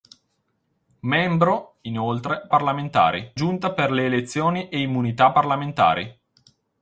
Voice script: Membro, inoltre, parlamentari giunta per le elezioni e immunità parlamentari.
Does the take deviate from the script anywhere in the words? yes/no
no